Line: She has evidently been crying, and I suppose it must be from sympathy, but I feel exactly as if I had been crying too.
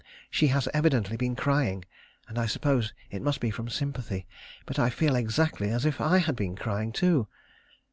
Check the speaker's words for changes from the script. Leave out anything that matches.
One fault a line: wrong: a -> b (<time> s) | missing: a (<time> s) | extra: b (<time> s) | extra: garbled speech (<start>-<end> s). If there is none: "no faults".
no faults